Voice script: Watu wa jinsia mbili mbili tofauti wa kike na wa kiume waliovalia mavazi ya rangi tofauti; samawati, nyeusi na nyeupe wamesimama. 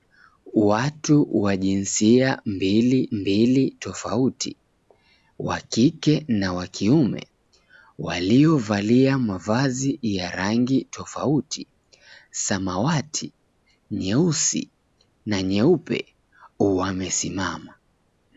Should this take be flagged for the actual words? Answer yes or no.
no